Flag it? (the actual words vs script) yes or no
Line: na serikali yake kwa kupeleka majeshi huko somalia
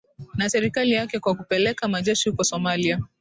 no